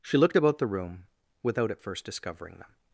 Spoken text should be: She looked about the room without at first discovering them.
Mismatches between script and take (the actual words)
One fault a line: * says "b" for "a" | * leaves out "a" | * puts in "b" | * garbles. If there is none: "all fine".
all fine